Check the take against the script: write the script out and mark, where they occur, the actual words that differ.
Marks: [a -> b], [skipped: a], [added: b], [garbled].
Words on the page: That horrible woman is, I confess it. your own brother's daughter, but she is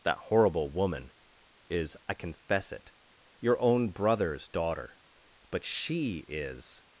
That horrible woman is, I confess it. your own brother's daughter, but she is